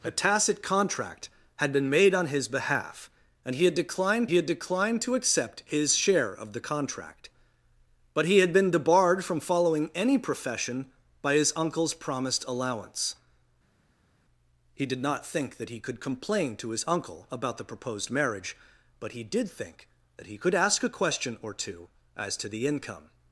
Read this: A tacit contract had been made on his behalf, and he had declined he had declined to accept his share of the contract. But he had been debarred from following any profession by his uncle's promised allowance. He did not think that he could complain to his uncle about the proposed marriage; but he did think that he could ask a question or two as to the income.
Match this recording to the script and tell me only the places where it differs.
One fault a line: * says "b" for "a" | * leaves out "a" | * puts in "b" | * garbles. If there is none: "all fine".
all fine